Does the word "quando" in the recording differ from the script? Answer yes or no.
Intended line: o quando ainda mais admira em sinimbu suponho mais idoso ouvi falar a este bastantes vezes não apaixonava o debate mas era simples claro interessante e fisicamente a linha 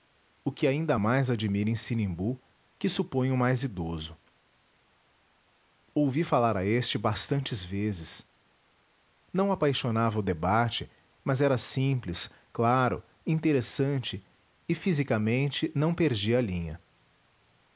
yes